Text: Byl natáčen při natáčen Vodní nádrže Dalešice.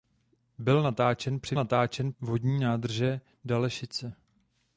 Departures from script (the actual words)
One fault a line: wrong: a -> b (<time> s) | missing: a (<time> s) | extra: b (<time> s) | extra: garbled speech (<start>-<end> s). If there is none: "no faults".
no faults